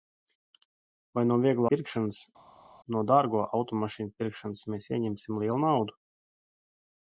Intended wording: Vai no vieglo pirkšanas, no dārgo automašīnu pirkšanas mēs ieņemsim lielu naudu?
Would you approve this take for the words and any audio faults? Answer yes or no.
yes